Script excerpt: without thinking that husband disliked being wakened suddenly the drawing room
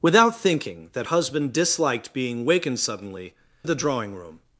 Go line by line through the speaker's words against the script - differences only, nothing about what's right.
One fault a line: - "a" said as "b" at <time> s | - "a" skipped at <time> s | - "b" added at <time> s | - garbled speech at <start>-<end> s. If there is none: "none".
none